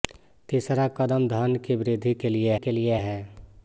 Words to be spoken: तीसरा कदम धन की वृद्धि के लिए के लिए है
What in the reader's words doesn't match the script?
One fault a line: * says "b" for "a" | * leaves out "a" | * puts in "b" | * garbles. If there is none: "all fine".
all fine